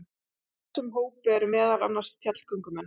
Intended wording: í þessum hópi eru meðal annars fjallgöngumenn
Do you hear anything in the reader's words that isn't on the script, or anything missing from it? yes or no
no